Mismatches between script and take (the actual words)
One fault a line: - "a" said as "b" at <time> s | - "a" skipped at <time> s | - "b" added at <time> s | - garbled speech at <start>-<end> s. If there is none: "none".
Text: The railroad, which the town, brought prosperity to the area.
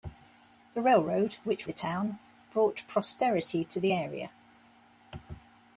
none